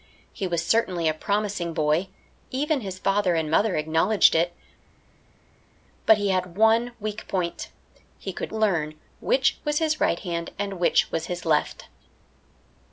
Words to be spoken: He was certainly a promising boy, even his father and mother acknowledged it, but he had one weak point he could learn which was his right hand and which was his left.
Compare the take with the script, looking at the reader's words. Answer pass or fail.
pass